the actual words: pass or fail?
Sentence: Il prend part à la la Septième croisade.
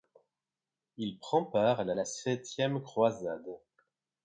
pass